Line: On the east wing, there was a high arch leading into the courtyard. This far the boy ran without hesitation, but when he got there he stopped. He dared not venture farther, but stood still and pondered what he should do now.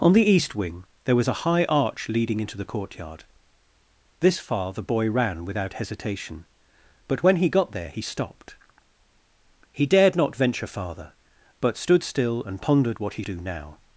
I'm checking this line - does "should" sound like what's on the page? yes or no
no